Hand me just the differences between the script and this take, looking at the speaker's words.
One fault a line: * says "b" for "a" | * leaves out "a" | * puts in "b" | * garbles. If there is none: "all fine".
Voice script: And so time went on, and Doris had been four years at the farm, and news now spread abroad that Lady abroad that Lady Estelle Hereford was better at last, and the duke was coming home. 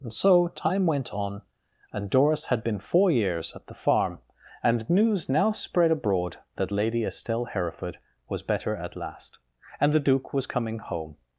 * leaves out "abroad that Lady"